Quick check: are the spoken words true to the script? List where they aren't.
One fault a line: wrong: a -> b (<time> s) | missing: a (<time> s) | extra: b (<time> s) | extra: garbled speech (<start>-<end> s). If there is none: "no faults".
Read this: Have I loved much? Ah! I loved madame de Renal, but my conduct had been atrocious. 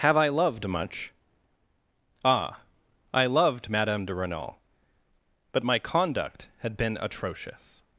no faults